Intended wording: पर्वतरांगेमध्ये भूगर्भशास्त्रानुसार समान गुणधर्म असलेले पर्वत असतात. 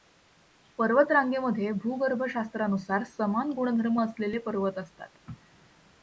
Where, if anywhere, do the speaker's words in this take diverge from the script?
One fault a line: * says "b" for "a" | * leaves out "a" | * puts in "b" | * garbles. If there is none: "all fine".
all fine